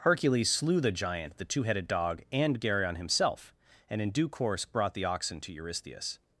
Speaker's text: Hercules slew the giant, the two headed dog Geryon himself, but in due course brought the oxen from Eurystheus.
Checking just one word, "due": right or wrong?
right